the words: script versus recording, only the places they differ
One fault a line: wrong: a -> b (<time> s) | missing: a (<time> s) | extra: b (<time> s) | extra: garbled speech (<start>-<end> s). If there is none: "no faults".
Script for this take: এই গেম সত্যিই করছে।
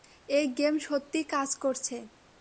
extra: কাজ (1.2 s)